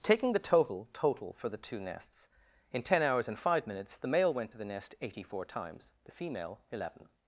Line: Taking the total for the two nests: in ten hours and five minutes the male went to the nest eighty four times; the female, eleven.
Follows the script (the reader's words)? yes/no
no